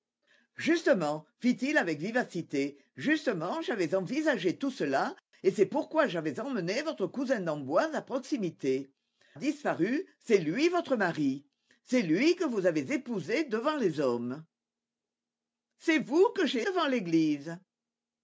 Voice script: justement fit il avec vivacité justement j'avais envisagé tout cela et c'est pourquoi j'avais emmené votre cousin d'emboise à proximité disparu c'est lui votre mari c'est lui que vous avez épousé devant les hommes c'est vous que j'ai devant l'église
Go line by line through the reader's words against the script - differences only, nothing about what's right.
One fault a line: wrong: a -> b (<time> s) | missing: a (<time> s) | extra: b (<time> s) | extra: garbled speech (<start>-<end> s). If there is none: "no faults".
no faults